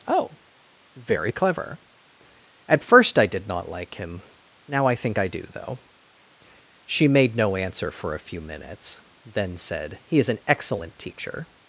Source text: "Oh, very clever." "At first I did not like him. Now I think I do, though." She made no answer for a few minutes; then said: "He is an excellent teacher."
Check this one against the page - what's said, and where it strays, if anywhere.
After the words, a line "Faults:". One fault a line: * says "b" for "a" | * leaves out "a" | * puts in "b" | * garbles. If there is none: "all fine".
"Oh, very clever." "At first I did not like him. Now I think I do, though." She made no answer for a few minutes; then said: "He is an excellent teacher."
Faults:
all fine